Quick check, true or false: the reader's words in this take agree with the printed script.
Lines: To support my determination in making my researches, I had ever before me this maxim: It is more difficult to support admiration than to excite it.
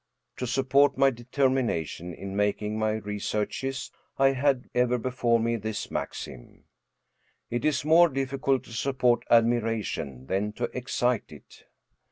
true